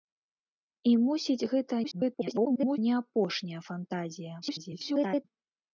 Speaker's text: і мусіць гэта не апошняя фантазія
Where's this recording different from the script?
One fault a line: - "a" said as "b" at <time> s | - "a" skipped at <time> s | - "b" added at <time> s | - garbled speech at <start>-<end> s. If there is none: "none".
- garbled speech at 1.8-2.8 s
- garbled speech at 4.4-5.3 s